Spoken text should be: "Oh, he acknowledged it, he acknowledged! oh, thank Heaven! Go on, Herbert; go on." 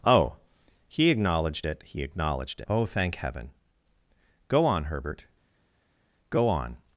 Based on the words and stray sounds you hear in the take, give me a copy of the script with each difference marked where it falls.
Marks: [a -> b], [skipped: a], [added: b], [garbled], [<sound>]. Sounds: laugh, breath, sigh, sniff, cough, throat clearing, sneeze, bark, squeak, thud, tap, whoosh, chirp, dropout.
"Oh, he acknowledged it, he acknowledged! oh, thank Heaven! Go on, Herbert; go on."